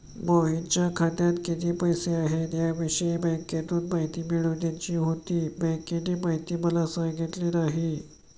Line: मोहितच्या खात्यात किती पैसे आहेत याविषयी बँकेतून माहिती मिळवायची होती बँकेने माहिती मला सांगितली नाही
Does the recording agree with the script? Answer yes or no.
yes